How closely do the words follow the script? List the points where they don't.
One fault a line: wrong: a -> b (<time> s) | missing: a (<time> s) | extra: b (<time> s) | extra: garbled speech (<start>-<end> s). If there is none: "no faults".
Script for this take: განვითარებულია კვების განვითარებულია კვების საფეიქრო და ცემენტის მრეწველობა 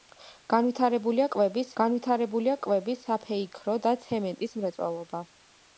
no faults